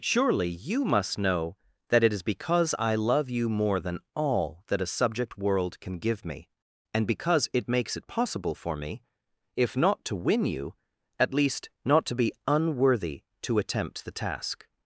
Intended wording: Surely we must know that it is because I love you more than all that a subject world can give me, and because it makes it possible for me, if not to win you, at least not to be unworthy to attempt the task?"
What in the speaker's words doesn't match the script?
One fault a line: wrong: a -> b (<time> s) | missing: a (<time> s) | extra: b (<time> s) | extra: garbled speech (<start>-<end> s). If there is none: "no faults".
wrong: we -> you (0.5 s)